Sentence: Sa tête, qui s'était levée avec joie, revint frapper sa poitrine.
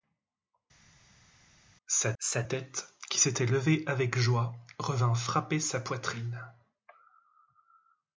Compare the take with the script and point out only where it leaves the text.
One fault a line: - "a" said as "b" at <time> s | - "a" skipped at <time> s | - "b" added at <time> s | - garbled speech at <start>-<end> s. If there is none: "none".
- "sa" added at 2.2 s